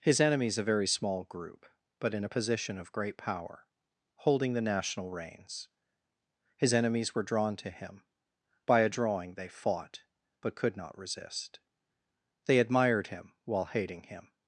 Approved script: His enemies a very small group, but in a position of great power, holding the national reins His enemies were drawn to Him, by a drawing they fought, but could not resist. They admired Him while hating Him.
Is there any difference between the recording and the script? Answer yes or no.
no